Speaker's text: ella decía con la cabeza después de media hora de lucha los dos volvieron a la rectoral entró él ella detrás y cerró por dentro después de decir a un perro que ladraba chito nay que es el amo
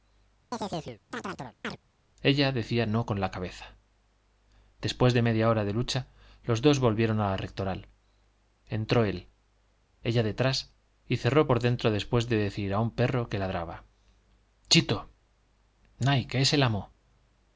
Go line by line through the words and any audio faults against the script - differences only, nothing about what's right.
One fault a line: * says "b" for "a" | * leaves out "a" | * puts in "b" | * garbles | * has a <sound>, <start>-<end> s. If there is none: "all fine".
* has a chirp, 0.5-1.8 s
* puts in "no"